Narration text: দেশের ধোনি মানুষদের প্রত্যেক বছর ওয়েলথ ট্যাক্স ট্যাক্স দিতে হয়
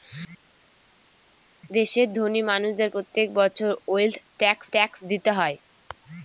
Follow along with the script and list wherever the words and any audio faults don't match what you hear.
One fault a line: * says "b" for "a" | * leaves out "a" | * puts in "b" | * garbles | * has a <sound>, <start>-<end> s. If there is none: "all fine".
all fine